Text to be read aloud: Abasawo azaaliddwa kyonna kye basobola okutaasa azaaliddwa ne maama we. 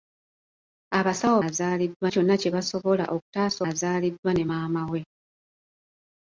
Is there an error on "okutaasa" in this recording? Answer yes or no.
no